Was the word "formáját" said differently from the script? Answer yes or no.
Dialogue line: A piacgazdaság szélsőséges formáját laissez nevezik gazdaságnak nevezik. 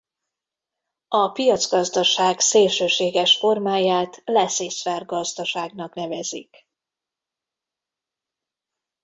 no